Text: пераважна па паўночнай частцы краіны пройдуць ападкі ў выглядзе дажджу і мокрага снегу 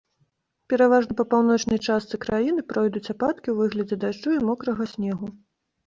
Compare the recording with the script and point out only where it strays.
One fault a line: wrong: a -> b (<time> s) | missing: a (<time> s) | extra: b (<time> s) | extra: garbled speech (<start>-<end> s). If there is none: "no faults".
no faults